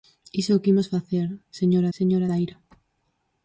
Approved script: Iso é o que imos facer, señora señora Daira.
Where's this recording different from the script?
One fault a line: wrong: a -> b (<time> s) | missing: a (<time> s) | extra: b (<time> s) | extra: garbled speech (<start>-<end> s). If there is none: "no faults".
no faults